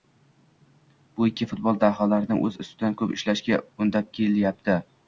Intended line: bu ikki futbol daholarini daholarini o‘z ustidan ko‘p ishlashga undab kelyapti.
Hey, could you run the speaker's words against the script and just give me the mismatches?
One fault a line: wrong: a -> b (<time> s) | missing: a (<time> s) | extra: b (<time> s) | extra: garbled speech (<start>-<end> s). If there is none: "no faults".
missing: daholarini (2.4 s)